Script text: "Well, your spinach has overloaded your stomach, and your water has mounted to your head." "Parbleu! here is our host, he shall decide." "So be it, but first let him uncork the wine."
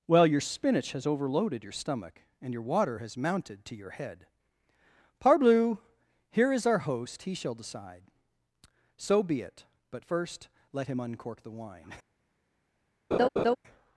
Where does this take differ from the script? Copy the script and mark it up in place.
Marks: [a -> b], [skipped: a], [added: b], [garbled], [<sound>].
"Well, your spinach has overloaded your stomach, and your water has mounted to your head." "Parbleu! here is our host, he shall decide." "So be it, but first let him uncork the wine." [laugh]